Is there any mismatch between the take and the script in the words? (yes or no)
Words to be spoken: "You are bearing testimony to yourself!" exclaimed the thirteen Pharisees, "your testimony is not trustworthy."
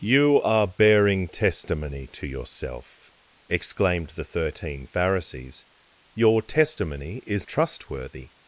yes